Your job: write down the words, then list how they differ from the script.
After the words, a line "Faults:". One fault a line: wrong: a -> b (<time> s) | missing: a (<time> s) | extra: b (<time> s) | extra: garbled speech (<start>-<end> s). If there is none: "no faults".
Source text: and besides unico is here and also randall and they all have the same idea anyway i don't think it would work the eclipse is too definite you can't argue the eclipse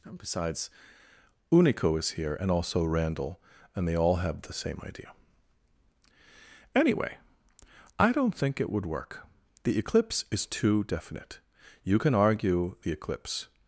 and besides unico is here and also randall and they all have the same idea anyway i don't think it would work the eclipse is too definite you can argue the eclipse
Faults:
wrong: can't -> can (12.0 s)